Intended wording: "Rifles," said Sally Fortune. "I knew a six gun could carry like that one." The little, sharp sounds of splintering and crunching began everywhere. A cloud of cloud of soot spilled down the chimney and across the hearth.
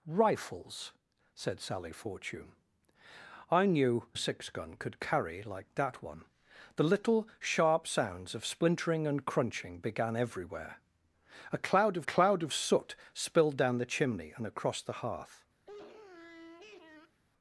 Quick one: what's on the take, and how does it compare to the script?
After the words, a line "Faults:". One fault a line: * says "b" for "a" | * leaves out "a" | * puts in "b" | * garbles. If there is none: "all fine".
"Rifles," said Sally Fortune. "I knew a six gun could carry like that one." The little, sharp sounds of splintering and crunching began everywhere. A cloud of cloud of soot spilled down the chimney and across the hearth.
Faults:
all fine